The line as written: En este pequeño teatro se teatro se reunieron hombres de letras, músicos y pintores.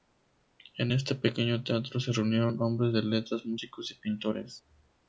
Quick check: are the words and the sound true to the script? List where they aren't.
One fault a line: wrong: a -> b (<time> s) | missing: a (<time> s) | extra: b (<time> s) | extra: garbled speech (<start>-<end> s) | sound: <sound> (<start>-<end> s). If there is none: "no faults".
missing: teatro se (2.1 s)